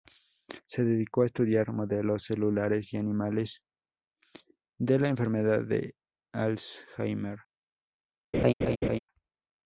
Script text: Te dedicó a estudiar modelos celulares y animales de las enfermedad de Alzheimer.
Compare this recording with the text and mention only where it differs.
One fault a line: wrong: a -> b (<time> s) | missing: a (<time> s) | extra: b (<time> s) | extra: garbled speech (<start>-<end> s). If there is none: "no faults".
wrong: Te -> Se (0.7 s)
wrong: las -> la (5.0 s)